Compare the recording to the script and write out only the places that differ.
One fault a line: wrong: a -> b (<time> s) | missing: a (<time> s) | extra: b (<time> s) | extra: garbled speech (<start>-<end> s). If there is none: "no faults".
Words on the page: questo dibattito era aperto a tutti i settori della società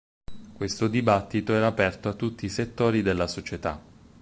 no faults